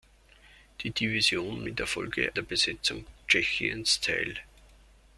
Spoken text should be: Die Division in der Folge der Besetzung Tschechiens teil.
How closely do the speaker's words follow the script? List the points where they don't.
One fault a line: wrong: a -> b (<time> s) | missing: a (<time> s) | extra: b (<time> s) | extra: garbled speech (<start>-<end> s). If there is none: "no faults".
no faults